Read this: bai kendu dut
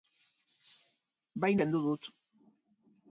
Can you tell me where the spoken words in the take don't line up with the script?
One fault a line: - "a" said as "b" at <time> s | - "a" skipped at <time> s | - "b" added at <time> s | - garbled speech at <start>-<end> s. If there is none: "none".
none